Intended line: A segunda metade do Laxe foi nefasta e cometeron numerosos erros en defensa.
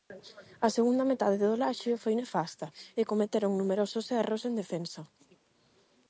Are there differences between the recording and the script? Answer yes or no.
no